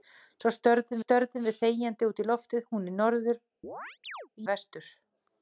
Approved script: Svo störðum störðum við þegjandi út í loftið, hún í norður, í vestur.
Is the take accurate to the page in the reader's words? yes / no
yes